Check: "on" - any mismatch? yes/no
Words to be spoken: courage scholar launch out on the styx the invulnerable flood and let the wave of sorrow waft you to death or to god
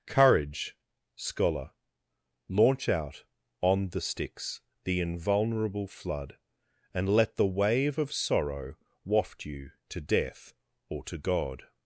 no